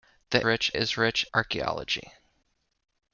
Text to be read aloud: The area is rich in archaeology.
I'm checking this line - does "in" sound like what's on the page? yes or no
no